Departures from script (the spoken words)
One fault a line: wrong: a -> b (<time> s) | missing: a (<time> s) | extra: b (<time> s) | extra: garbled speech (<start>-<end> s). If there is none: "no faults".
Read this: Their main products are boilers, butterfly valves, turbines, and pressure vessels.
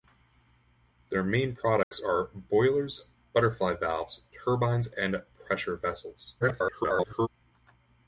extra: garbled speech (6.4-7.3 s)